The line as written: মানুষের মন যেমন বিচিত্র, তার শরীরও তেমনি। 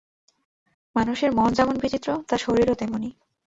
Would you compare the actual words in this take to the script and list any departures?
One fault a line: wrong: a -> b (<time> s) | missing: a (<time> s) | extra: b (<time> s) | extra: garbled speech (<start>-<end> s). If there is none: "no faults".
no faults